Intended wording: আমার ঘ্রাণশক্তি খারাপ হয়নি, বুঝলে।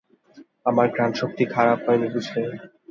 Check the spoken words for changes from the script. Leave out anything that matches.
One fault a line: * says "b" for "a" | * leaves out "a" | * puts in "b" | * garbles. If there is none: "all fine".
all fine